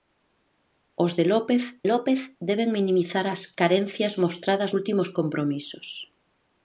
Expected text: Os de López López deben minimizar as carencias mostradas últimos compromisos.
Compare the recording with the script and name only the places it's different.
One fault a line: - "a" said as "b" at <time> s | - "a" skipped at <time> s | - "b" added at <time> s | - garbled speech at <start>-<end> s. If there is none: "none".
none